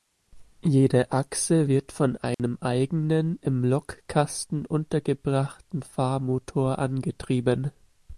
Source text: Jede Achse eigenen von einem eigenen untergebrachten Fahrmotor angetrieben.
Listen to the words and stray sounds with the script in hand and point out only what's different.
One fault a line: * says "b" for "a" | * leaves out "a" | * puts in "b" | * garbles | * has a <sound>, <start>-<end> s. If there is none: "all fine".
* says "wird" for "eigenen"
* has a dropout, 2.3-2.4 s
* puts in "im Lokkasten"